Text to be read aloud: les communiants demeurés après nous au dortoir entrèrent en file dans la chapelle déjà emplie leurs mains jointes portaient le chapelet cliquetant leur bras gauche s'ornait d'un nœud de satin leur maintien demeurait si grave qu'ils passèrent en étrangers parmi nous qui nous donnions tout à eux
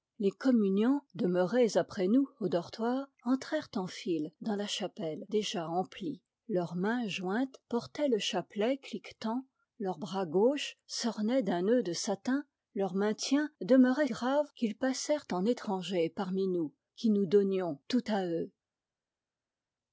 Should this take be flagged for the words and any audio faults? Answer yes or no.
yes